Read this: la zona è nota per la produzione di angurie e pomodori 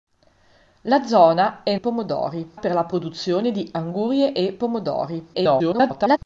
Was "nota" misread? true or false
true